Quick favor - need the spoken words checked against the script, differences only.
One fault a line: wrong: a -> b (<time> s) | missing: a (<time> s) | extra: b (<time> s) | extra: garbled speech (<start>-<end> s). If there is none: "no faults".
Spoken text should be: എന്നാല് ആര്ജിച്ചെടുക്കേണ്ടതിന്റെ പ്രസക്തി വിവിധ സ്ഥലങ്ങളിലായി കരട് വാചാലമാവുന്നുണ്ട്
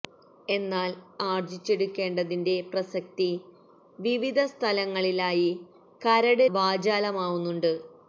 no faults